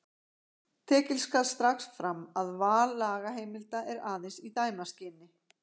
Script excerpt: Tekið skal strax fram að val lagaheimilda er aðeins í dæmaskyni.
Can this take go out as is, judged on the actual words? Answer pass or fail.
pass